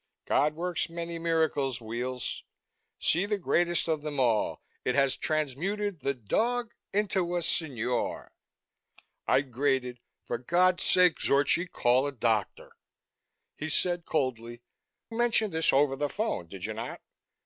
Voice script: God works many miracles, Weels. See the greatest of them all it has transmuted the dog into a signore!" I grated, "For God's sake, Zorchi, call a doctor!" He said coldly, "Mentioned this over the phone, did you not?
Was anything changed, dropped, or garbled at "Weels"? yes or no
no